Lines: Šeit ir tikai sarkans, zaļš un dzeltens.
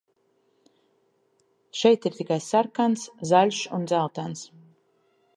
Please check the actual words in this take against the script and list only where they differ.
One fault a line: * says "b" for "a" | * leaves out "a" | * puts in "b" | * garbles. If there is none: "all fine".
all fine